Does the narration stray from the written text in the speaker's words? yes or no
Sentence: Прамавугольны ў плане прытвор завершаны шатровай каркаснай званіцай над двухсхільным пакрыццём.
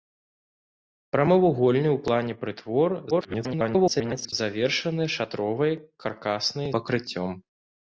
yes